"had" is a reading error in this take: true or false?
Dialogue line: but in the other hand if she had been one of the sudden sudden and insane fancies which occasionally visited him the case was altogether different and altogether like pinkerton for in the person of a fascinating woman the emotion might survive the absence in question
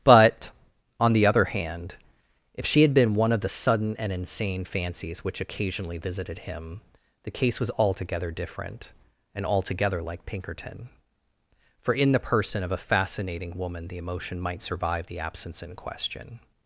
false